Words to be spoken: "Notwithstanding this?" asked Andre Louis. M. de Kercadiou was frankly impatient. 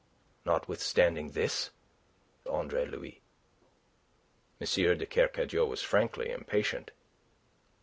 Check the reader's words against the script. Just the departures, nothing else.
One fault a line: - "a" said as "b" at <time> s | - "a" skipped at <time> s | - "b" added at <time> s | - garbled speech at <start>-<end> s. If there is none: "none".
- "asked" skipped at 1.7 s